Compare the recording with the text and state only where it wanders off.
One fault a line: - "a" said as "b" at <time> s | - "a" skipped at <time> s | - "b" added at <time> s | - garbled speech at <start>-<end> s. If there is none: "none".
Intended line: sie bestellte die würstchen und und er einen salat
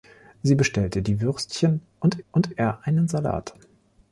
none